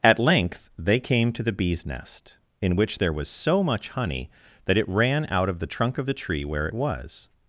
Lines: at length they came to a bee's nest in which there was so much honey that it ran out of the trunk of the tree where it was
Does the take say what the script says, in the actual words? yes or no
no